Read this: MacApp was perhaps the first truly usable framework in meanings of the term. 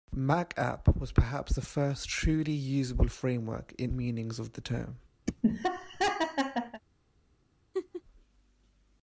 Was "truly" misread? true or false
false